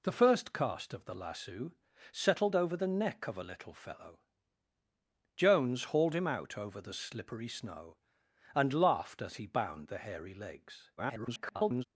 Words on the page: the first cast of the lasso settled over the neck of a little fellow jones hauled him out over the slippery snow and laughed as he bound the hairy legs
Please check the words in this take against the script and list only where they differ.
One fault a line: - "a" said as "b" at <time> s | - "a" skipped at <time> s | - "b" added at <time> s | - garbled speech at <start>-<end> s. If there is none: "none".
- garbled speech at 11.0-11.8 s